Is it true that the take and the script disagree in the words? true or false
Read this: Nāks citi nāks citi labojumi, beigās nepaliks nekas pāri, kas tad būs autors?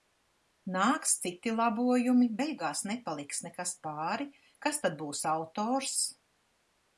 true